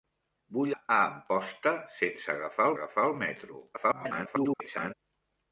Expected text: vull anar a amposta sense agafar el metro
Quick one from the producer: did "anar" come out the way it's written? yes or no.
no